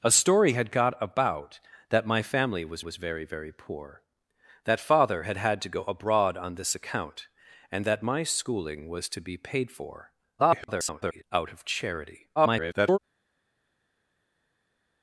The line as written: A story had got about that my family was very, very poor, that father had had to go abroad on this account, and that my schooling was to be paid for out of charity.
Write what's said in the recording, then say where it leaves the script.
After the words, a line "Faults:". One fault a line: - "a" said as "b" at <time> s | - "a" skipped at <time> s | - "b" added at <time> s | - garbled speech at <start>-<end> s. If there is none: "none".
A story had got about that my family was was very, very poor, that father had had to go abroad on this account, and that my schooling was to be paid for [garbled] out of charity. [garbled]
Faults:
- "was" added at 2.8 s
- garbled speech at 10.4-11.2 s
- garbled speech at 12.4-13.0 s